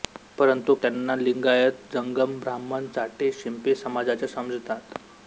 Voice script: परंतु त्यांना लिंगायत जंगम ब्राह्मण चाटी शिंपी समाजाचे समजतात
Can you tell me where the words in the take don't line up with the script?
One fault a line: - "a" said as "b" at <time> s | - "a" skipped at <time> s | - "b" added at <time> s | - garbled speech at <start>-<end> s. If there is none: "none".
none